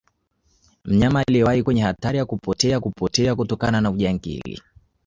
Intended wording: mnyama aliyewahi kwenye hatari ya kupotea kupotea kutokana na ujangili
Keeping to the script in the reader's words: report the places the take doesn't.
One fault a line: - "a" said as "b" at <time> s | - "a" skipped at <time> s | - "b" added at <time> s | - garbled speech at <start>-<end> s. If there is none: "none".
none